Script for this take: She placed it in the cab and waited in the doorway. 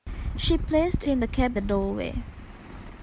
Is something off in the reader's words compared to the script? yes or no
yes